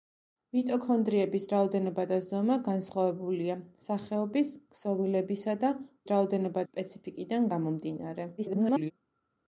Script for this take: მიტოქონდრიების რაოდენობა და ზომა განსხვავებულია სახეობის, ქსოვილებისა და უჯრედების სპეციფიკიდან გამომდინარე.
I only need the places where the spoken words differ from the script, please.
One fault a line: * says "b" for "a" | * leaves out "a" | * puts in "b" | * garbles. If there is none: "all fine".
* says "რაოდენობა" for "უჯრედების"
* garbles